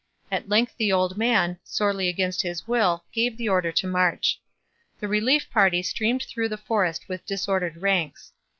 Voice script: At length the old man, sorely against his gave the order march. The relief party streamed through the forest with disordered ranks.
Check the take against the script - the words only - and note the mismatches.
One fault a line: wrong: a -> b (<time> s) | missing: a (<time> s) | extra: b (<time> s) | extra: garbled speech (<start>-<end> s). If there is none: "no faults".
extra: will (2.7 s)
extra: to (3.7 s)